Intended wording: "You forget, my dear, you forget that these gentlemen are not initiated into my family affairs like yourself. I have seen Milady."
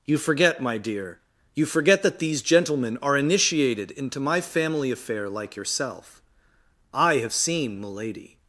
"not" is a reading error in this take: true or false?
true